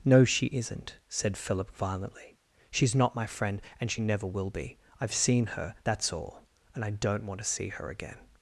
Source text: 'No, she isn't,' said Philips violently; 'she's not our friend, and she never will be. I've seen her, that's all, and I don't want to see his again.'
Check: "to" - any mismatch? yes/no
no